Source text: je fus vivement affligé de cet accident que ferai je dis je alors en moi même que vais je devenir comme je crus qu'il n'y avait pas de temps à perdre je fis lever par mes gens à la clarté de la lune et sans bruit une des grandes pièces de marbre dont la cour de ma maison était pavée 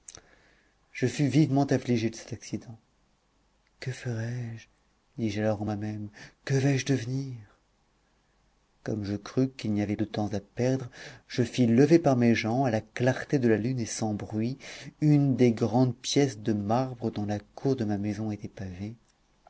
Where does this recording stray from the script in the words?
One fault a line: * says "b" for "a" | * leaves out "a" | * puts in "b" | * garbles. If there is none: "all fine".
* leaves out "pas"